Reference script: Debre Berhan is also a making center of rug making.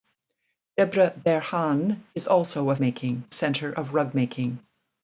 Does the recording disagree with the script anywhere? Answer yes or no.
no